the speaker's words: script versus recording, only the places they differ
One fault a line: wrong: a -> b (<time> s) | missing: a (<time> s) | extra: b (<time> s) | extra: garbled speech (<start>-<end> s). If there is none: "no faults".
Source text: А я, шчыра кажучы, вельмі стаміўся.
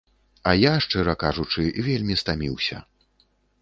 no faults